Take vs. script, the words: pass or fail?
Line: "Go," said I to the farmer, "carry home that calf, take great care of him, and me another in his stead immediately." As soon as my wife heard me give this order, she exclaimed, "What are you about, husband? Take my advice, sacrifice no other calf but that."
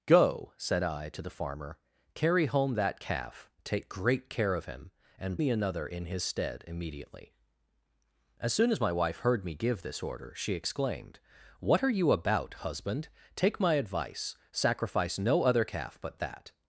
pass